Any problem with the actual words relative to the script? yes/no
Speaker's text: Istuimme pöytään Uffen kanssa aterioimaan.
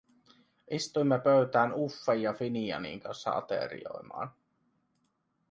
yes